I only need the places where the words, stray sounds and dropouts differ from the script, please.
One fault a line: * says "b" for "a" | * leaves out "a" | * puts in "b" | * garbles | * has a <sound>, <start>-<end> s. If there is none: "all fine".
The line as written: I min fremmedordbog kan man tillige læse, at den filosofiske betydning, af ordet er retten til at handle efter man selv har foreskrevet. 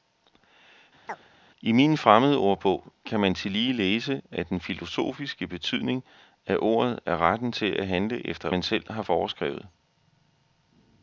* has a chirp, 1.1-1.3 s